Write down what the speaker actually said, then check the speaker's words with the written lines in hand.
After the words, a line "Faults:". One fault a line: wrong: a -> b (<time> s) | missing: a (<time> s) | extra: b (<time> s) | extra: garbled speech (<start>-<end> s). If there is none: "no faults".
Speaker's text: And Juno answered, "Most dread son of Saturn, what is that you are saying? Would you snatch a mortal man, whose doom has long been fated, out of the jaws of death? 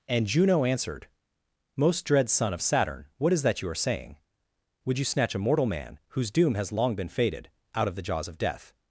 And Juno answered, "Most dread son of Saturn, what is that you are saying? Would you snatch a mortal man, whose doom has long been fated, out of the jaws of death?
Faults:
no faults